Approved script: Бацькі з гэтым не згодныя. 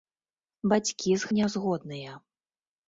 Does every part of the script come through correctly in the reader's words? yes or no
no